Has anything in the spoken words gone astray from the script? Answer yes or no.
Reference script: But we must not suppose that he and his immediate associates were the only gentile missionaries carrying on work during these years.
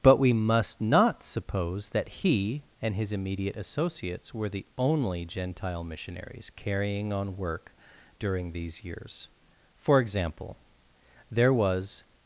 yes